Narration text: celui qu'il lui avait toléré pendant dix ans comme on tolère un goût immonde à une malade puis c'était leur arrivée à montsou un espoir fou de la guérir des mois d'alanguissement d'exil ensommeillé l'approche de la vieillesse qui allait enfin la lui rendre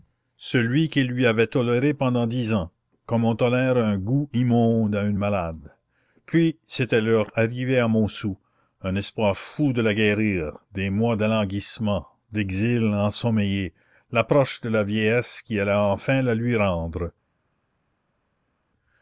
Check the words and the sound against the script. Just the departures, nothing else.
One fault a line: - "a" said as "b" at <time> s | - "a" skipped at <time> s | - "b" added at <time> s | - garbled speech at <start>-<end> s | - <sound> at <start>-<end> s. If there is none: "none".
none